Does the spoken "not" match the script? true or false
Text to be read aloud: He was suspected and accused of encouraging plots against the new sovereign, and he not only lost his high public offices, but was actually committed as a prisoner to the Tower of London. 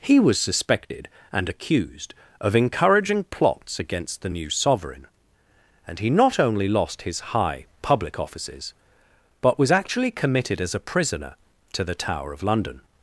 true